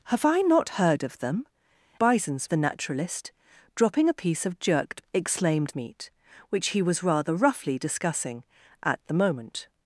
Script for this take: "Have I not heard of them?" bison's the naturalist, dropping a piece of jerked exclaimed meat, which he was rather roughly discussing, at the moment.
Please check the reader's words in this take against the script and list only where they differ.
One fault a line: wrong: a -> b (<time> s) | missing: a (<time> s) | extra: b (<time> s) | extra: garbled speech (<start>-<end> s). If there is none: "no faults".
no faults